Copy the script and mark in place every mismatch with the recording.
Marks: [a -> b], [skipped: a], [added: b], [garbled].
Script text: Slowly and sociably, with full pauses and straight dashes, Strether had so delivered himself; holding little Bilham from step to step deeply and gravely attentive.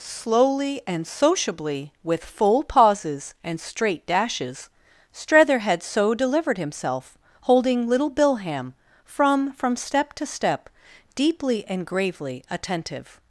Slowly and sociably, with full pauses and straight dashes, Strether had so delivered himself; holding little Bilham from [added: from] step to step deeply and gravely attentive.